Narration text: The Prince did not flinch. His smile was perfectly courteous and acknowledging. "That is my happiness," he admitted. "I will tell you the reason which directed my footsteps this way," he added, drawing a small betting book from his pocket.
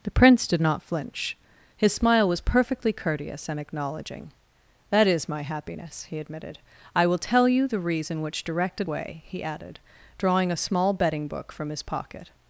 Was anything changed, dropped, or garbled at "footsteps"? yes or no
yes